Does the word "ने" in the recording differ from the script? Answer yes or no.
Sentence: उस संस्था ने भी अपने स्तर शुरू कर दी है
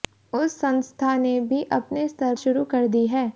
no